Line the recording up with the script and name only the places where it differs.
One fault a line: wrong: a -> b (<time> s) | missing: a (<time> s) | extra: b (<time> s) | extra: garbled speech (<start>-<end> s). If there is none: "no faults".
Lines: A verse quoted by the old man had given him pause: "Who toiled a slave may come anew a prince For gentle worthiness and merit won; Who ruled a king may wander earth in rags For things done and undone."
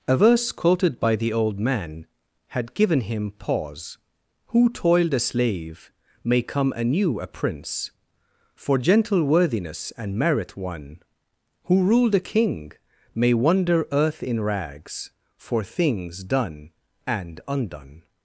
no faults